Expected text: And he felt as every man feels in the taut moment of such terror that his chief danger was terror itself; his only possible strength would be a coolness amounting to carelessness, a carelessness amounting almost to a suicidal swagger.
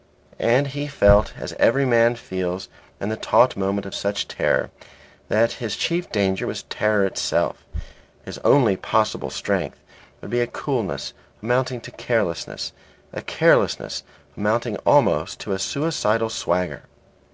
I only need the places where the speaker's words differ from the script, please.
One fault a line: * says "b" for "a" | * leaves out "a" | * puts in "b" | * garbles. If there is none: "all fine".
all fine